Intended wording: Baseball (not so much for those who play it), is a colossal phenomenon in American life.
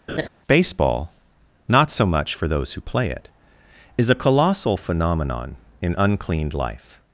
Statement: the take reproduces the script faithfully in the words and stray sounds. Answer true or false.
false